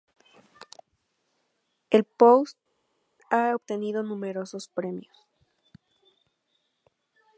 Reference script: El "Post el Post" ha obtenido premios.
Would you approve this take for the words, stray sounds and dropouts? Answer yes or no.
no